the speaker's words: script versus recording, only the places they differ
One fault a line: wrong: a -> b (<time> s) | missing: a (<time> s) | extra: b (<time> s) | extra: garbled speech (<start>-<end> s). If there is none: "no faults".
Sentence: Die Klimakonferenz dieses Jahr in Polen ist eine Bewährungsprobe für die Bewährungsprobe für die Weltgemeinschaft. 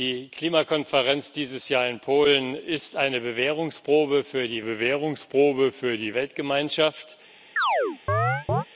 no faults